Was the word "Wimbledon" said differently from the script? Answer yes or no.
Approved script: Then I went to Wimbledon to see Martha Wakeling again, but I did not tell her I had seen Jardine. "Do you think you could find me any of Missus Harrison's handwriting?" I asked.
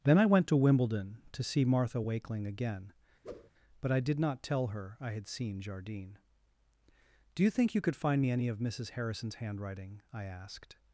no